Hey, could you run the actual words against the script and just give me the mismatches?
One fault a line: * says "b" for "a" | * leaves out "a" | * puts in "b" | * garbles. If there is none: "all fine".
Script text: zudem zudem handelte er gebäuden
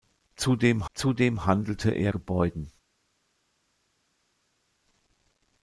all fine